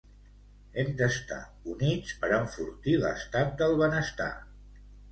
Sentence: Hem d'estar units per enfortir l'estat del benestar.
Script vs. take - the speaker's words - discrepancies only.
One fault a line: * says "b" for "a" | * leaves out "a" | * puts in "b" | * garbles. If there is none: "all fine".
all fine